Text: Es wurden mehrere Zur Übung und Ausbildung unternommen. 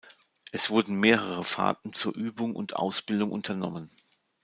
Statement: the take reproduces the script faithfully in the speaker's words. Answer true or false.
false